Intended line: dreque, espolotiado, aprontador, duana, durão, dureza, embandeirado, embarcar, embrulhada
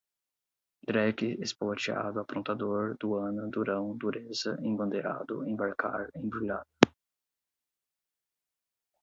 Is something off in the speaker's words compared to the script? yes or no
no